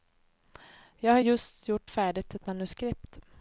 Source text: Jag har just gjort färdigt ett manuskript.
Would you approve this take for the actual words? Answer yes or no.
yes